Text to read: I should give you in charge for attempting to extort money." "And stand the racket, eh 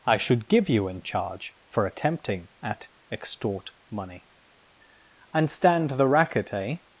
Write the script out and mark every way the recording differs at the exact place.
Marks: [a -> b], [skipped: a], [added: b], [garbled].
I should give you in charge for attempting [to -> at] extort money." "And stand the racket, eh